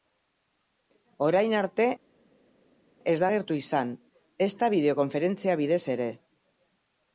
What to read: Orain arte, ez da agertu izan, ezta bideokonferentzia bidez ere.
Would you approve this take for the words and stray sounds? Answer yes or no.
yes